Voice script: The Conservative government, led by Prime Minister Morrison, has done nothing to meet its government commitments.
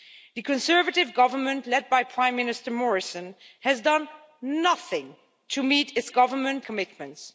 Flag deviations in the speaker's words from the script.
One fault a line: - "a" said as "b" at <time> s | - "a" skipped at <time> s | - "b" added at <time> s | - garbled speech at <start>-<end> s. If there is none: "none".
none